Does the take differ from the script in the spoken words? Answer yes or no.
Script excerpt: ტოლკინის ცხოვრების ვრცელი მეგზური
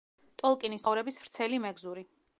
no